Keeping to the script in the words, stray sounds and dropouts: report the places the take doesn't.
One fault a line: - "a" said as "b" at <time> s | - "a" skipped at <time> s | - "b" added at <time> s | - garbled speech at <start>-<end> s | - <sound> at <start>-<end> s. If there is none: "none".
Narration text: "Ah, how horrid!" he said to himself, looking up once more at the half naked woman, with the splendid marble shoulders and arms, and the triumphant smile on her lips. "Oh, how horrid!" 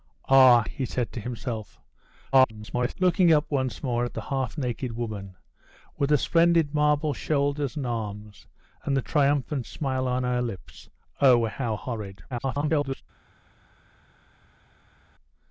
- "how horrid" skipped at 0.6 s
- garbled speech at 2.3-2.9 s
- garbled speech at 12.3-13.0 s